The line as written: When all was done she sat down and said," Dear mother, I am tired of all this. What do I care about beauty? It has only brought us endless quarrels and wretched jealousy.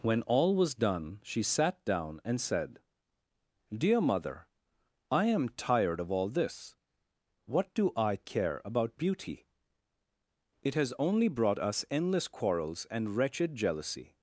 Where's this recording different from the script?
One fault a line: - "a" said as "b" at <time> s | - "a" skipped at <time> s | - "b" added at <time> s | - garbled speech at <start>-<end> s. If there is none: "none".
none